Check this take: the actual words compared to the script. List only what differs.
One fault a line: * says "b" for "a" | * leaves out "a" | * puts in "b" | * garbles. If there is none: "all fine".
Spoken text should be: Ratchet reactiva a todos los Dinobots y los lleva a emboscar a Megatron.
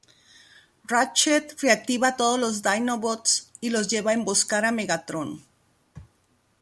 all fine